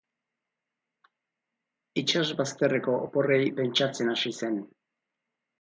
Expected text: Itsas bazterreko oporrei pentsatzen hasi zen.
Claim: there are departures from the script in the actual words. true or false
false